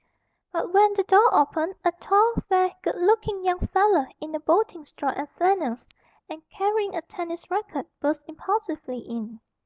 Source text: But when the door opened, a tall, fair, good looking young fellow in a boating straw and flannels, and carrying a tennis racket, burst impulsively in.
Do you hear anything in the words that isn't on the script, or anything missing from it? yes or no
no